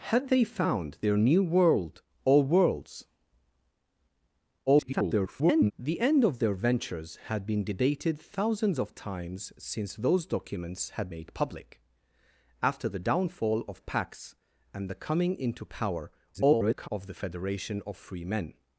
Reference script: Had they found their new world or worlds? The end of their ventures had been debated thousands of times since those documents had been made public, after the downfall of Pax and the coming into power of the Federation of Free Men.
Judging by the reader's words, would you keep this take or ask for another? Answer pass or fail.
fail